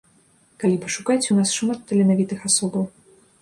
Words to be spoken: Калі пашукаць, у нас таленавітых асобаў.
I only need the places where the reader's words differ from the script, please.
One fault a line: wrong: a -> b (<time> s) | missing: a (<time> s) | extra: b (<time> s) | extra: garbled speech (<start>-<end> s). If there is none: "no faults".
extra: шмат (1.6 s)